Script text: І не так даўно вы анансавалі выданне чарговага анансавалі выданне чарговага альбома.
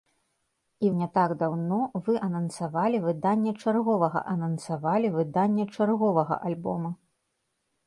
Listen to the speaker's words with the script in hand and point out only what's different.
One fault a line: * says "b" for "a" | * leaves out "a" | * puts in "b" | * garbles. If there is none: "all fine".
all fine